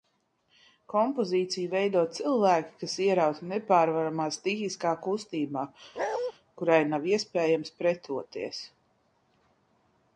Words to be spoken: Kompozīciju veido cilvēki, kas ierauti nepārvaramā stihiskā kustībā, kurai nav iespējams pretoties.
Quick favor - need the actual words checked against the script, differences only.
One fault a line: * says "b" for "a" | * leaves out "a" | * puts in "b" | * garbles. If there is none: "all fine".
all fine